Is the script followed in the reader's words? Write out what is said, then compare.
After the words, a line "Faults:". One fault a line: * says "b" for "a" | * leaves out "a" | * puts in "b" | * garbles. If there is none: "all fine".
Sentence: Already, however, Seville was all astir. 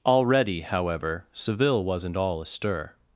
Already, however, Seville wasn't all astir.
Faults:
* says "wasn't" for "was"